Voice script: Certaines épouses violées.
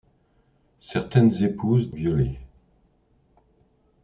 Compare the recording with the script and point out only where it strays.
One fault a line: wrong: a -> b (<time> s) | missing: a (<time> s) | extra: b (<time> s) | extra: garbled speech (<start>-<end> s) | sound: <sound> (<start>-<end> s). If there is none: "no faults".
no faults